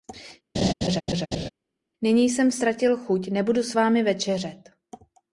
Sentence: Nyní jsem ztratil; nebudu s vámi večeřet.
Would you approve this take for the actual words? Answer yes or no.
no